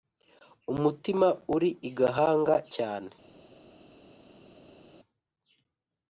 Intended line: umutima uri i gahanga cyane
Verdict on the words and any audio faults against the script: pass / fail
pass